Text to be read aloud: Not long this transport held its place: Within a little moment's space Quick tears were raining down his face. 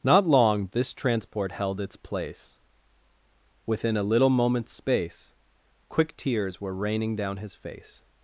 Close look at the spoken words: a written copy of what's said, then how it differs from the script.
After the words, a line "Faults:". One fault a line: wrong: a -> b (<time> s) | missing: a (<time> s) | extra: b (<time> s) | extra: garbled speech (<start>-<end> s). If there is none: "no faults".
Not long this transport held its place: Within a little moment's space Quick tears were raining down his face.
Faults:
no faults